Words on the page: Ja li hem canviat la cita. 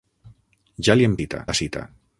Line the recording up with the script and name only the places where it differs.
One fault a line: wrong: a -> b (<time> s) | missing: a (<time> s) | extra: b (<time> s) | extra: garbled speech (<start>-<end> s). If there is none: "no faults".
wrong: canviat -> cita (1.2 s)